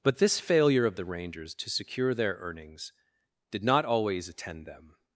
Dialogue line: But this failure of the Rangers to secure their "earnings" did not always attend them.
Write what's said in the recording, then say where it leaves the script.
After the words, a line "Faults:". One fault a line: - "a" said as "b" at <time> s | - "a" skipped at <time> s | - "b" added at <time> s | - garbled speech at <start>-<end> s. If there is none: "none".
But this failure of the Rangers to secure their "earnings" did not always attend them.
Faults:
none